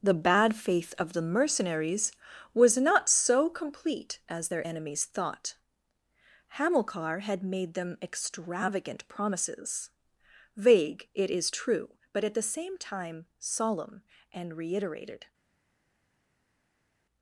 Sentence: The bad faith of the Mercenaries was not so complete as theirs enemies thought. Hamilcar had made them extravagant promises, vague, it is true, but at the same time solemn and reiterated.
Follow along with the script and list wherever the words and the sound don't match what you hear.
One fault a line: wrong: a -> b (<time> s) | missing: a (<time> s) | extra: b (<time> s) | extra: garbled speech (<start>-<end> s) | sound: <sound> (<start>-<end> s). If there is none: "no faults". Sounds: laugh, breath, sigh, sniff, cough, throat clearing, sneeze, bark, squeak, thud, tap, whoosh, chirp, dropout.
wrong: theirs -> their (4.5 s)